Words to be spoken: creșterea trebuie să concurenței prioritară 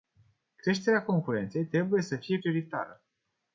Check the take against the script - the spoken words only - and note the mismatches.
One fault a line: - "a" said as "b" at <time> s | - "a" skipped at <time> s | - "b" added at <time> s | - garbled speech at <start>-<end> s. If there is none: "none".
- "concurenței" added at 1.0 s
- "concurenței" said as "fie" at 2.1 s